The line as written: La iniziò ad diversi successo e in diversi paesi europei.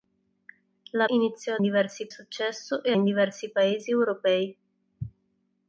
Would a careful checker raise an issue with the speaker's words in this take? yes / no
no